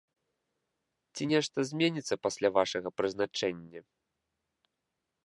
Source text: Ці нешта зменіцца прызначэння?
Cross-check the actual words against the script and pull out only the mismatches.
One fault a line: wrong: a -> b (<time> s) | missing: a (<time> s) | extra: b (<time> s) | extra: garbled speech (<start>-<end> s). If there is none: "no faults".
extra: пасля вашага (2.3 s)